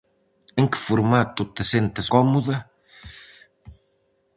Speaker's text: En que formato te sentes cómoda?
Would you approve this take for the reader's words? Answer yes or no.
yes